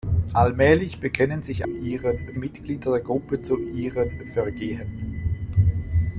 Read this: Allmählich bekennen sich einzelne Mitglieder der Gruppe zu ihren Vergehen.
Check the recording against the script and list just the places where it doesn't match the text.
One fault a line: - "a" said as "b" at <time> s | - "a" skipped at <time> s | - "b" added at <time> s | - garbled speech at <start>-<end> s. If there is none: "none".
- "einzelne" said as "ihren" at 1.7 s